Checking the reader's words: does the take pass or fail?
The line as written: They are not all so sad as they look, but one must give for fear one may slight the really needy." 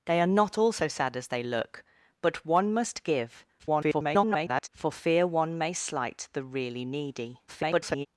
fail